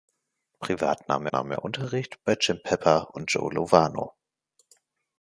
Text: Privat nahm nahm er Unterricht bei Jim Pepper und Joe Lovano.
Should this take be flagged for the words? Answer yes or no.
no